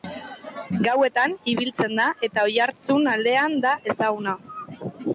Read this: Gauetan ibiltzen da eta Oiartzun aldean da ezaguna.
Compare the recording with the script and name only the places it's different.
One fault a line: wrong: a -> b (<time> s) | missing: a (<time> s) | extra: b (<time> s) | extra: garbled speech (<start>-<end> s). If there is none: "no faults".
no faults